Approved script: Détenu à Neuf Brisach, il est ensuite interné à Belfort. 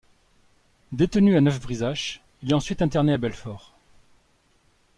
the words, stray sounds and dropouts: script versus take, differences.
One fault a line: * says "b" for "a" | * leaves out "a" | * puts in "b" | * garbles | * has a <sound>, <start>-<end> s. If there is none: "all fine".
all fine